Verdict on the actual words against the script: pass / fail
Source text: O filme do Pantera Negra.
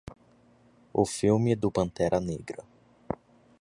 pass